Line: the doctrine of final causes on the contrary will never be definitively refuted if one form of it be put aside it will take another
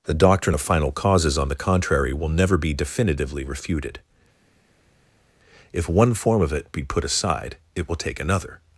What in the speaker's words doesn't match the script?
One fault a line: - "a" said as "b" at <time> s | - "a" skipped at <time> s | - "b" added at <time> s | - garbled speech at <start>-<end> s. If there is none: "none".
none